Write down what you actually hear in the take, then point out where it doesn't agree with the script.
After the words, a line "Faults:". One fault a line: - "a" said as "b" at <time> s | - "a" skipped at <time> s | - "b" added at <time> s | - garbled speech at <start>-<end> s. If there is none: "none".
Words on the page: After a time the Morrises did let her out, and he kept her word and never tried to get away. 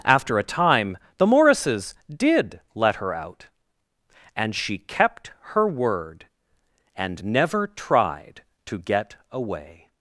After a time the Morrises did let her out, and she kept her word and never tried to get away.
Faults:
- "he" said as "she" at 4.6 s